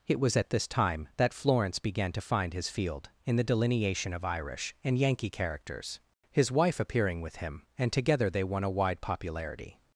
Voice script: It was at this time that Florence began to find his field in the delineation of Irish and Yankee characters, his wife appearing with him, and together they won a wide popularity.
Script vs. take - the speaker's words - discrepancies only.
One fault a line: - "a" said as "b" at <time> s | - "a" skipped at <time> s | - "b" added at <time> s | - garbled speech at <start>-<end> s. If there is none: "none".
none